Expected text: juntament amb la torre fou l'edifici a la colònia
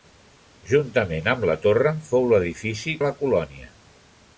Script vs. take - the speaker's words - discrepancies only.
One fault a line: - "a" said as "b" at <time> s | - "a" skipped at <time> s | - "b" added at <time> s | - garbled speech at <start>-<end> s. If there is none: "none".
none